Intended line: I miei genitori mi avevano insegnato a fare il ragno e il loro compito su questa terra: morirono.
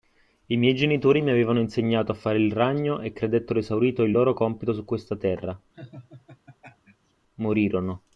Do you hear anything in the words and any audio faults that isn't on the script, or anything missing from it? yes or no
yes